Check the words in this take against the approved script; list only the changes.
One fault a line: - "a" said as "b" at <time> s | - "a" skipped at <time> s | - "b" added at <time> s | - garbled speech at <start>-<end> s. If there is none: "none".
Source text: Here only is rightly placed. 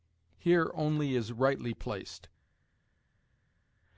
none